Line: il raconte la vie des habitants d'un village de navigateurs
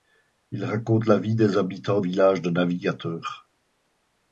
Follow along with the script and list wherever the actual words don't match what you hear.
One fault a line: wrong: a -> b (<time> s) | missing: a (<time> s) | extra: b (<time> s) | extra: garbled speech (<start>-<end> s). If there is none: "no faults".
missing: d'un (2.0 s)